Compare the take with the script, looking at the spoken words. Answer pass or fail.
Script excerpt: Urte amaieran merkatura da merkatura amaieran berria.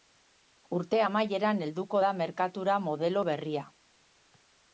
fail